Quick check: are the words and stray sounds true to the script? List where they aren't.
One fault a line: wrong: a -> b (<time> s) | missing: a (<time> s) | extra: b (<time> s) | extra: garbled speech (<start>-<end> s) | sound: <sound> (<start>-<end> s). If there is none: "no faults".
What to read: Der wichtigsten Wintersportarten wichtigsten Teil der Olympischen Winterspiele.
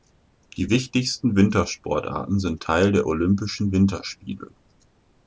wrong: Der -> Die (0.6 s)
wrong: wichtigsten -> sind (2.4 s)